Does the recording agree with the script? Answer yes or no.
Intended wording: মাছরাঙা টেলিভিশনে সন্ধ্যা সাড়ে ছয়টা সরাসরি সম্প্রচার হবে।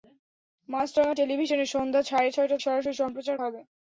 yes